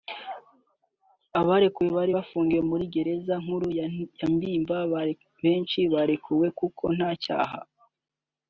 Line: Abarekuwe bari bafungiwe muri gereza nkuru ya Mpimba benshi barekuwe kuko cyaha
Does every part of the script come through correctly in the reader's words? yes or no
no